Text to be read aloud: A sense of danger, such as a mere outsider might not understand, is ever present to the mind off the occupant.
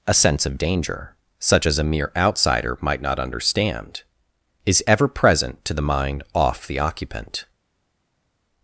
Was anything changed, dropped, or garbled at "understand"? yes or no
no